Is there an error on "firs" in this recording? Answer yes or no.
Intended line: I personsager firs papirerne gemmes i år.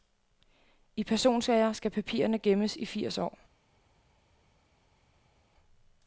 yes